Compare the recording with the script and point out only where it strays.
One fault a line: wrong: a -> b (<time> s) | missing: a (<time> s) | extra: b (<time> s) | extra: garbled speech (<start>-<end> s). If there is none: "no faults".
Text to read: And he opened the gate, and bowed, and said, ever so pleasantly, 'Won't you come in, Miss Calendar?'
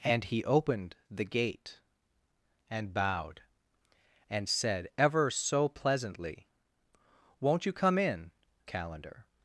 missing: Miss (8.3 s)